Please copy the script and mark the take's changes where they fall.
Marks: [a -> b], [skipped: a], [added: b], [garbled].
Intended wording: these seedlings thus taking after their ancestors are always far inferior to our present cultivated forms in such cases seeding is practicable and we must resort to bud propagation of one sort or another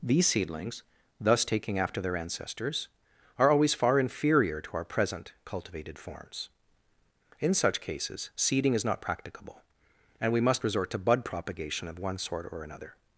these seedlings thus taking after their ancestors are always far inferior to our present cultivated forms in such cases seeding is [added: not] practicable and we must resort to bud propagation of one sort or another